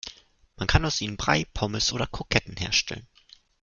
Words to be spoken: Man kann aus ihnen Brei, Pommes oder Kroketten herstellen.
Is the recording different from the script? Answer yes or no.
no